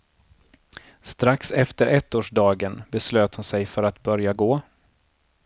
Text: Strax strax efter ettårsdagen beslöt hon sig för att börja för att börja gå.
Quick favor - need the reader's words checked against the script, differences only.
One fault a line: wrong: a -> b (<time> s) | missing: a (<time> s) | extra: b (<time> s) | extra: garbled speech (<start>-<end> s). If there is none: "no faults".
missing: strax (1.5 s)
missing: för att börja (4.3 s)